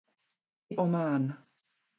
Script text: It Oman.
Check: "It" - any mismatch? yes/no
no